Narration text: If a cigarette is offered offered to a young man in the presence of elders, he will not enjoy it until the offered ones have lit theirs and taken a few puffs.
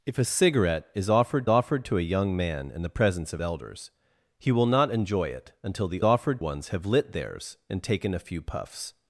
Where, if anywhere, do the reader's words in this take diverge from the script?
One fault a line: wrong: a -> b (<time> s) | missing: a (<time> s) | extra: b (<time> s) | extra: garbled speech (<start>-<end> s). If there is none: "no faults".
no faults